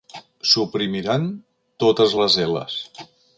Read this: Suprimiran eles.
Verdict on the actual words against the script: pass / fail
fail